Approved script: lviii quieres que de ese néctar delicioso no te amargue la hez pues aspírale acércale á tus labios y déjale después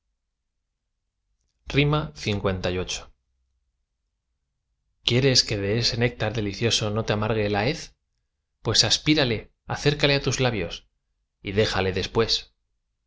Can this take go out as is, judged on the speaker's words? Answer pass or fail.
pass